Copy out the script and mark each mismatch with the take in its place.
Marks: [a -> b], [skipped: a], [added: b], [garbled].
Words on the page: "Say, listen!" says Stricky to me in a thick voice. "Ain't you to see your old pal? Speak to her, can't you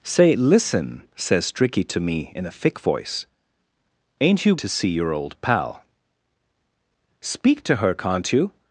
"Say, listen!" says Stricky to me in a thick voice. "Ain't you to see your old pal? Speak to her, can't you